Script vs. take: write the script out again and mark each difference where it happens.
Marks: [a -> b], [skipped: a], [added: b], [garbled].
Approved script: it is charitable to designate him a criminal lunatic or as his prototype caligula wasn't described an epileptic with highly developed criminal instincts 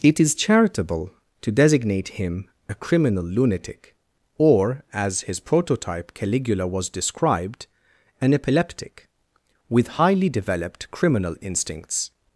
it is charitable to designate him a criminal lunatic or as his prototype caligula [wasn't -> was] described an epileptic with highly developed criminal instincts